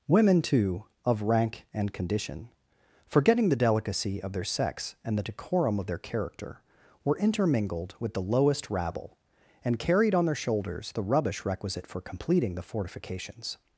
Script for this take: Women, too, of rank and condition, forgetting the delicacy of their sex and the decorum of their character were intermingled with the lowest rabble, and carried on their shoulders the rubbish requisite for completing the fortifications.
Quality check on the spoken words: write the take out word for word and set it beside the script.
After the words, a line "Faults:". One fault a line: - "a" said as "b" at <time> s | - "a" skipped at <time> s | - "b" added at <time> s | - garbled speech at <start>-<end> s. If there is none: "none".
Women, too, of rank and condition, forgetting the delicacy of their sex and the decorum of their character were intermingled with the lowest rabble, and carried on their shoulders the rubbish requisite for completing the fortifications.
Faults:
none